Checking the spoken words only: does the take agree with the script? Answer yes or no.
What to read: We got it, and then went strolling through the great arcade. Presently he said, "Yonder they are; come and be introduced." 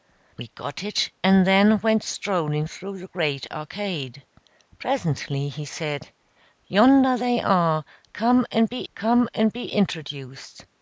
no